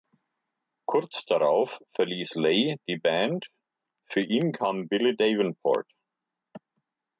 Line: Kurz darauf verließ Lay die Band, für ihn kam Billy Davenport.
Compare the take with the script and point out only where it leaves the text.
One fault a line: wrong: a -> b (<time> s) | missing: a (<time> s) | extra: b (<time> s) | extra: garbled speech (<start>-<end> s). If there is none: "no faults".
no faults